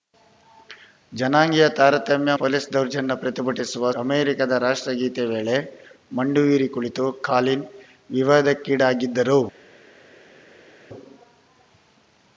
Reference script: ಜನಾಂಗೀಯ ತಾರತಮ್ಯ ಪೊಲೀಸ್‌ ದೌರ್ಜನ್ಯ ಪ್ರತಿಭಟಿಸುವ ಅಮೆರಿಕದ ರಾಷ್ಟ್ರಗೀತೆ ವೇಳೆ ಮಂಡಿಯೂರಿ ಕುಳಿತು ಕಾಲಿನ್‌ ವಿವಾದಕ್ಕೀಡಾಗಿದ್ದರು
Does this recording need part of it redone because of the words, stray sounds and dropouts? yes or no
no